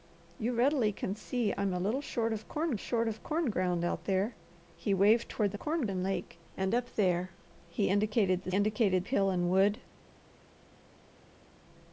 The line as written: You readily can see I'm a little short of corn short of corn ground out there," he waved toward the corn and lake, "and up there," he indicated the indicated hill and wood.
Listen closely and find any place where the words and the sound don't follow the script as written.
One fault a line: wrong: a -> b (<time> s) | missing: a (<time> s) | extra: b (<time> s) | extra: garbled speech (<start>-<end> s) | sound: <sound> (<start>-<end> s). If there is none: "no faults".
no faults